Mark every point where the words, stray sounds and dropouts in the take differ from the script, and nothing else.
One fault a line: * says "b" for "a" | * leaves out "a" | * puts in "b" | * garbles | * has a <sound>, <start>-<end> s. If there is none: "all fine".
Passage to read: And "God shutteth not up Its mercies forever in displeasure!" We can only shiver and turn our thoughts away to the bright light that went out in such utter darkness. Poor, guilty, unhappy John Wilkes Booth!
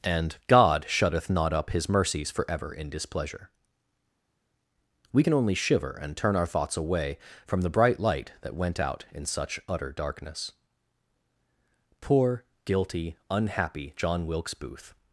* says "His" for "Its"
* says "from" for "to"